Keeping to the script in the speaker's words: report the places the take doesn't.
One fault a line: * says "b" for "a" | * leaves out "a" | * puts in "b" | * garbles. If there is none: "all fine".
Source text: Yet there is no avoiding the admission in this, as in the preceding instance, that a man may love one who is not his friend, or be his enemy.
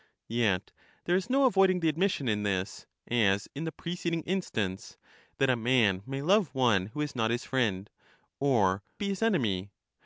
all fine